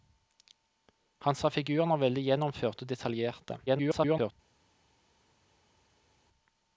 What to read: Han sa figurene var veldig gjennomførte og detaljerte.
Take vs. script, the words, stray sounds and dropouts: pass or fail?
fail